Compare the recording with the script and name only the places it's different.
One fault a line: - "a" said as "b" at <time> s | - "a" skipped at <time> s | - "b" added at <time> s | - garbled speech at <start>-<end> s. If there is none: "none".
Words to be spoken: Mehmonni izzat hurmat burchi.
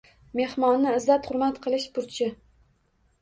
- "qilish" added at 1.7 s